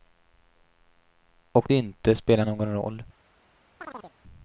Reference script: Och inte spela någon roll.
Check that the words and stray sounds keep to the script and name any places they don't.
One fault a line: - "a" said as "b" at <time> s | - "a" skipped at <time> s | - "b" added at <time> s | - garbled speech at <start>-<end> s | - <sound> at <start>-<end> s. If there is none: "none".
- chirp at 3.8-4.1 s